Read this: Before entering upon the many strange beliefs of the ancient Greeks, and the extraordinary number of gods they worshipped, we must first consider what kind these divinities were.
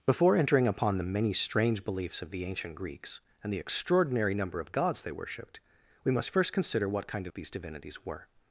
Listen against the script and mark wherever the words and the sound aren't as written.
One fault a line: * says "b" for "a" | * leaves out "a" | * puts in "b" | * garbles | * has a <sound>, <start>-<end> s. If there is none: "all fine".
all fine